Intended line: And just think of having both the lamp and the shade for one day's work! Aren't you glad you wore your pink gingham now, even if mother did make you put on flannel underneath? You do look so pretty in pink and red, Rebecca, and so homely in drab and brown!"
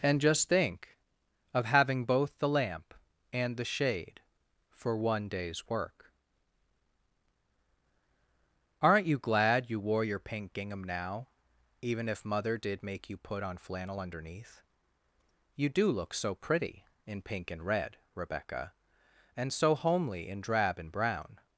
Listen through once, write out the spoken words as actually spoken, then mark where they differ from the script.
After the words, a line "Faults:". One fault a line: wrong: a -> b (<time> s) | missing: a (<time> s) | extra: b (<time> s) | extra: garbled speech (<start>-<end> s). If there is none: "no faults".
And just think of having both the lamp and the shade for one day's work! Aren't you glad you wore your pink gingham now, even if mother did make you put on flannel underneath? You do look so pretty in pink and red, Rebecca, and so homely in drab and brown!"
Faults:
no faults